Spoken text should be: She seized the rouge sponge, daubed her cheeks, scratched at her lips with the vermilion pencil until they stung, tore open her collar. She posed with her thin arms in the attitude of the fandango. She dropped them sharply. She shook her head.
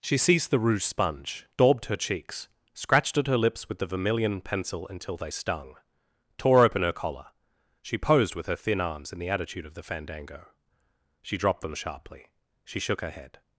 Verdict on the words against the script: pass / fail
pass